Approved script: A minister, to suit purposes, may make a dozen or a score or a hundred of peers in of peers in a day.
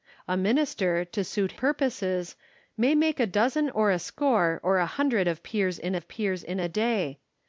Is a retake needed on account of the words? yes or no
no